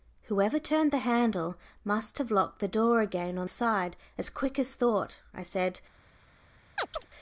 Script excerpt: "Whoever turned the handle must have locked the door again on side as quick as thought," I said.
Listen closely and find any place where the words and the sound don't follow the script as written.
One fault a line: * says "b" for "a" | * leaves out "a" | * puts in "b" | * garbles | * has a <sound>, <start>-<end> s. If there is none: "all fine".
* has a chirp, 6.8-7.1 s